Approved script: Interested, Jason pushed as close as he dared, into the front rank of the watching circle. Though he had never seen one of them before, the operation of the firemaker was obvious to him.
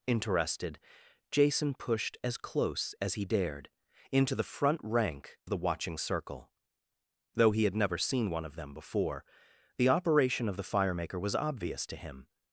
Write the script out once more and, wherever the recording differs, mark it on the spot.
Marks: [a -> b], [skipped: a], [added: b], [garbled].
Interested, Jason pushed as close as he dared, into the front rank [skipped: of] the watching circle. Though he had never seen one of them before, the operation of the firemaker was obvious to him.